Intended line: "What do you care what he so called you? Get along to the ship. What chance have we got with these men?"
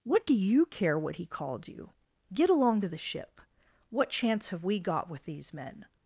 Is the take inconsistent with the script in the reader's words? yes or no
yes